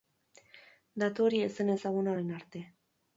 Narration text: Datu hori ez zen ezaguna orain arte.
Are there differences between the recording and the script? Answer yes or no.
no